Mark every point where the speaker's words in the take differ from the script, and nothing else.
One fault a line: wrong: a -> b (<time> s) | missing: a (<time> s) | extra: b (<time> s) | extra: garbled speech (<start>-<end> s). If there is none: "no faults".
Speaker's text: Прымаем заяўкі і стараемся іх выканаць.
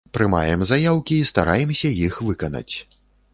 no faults